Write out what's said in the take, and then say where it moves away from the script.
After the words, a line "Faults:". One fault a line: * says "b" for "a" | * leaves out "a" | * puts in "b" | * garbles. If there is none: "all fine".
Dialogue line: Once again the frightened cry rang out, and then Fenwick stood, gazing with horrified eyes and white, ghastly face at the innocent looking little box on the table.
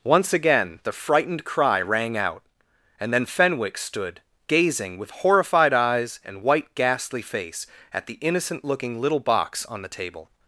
Once again the frightened cry rang out, and then Fenwick stood, gazing with horrified eyes and white, ghastly face at the innocent looking little box on the table.
Faults:
all fine